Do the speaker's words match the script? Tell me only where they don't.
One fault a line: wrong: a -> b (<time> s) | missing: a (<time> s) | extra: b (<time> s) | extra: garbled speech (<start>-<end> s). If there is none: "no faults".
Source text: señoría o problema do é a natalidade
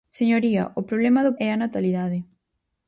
no faults